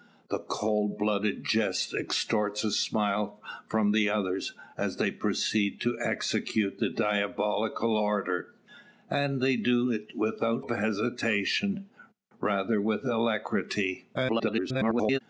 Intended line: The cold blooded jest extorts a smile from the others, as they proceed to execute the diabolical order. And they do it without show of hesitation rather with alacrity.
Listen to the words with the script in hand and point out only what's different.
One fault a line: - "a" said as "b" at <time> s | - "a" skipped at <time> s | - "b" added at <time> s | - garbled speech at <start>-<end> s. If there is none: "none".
- "show" skipped at 10.7 s
- garbled speech at 14.1-15.2 s